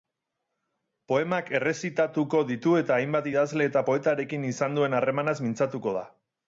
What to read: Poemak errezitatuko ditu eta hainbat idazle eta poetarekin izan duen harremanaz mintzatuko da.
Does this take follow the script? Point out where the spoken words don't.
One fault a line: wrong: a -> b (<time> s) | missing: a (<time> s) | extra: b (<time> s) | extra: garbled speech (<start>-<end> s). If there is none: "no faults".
no faults